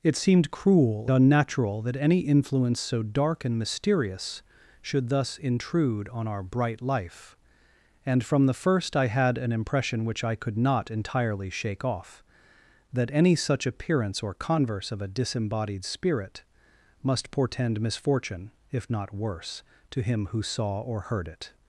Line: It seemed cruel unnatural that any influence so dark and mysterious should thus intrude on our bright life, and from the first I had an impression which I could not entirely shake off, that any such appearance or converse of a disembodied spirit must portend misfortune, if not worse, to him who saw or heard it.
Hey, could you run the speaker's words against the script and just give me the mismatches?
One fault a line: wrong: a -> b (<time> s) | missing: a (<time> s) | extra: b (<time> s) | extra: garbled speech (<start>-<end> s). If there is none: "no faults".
no faults